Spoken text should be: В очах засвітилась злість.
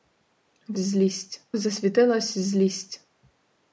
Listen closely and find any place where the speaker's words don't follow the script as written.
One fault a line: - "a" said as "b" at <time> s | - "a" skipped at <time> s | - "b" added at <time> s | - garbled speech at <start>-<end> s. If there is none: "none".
- "очах" said as "злість" at 0.8 s